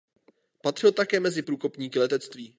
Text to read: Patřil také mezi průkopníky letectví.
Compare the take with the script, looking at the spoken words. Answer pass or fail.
pass